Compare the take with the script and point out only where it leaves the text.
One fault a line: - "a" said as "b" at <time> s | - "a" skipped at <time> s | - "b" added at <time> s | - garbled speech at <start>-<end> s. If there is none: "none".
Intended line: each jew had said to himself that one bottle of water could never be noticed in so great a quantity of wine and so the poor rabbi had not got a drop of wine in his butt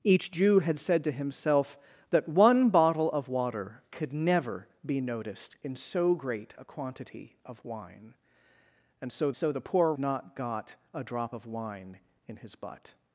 - "so" added at 9.3 s
- "rabbi had" skipped at 9.9 s